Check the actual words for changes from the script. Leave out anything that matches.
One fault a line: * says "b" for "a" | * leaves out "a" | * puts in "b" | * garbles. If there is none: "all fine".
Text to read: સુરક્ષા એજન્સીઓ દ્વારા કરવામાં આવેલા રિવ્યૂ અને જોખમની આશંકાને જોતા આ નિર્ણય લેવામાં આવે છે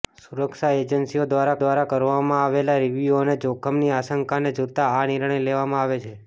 * puts in "દ્વારા"